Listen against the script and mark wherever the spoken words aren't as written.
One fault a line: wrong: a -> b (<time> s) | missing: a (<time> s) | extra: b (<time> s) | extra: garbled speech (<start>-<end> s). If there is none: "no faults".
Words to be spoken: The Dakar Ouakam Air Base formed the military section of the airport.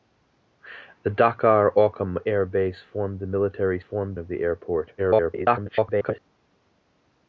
wrong: section -> formed (3.8 s)
extra: garbled speech (5.0-6.2 s)